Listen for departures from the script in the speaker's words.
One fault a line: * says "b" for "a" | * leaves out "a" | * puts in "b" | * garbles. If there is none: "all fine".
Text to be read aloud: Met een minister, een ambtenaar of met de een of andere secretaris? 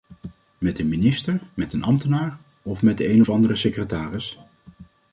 * puts in "met"